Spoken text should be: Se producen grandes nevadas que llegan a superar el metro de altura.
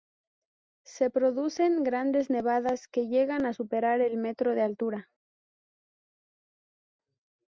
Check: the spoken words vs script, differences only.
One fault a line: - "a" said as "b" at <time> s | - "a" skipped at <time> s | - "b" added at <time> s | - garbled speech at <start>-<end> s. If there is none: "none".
none